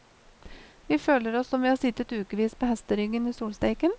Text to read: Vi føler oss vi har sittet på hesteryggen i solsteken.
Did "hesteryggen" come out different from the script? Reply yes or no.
no